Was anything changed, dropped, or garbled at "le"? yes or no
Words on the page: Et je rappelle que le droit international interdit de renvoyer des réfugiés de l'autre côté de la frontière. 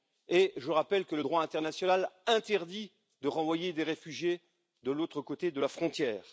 no